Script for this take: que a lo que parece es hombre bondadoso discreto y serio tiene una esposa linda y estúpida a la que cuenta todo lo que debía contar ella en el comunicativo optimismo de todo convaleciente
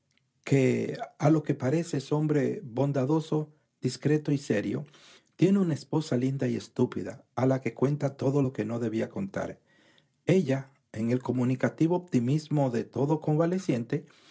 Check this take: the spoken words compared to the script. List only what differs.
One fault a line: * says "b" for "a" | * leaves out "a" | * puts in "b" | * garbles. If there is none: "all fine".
* puts in "no"